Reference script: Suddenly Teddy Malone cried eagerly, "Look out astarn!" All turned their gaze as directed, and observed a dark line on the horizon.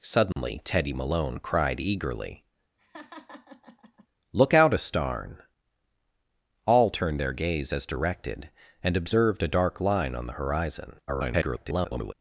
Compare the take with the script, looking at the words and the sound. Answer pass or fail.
fail